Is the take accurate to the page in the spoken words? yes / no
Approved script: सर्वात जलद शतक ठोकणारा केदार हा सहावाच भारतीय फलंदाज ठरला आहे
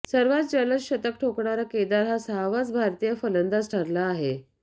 yes